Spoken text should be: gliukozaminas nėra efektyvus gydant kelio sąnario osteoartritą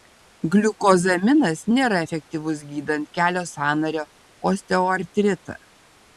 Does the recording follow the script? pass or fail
pass